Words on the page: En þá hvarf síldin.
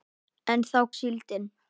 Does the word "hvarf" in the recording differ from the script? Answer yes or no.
yes